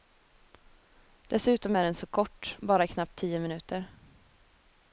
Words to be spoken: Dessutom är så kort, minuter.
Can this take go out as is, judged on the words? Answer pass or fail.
fail